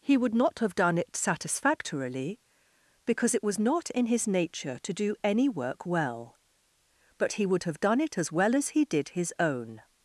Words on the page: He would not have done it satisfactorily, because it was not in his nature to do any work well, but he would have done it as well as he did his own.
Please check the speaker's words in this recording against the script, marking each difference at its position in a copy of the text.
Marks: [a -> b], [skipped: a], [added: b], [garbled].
He would not have done it satisfactorily, because it was not in his nature to do any work well, but he would have done it as well as he did his own.